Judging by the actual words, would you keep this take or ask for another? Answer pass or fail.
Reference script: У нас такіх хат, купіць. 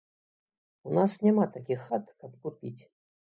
fail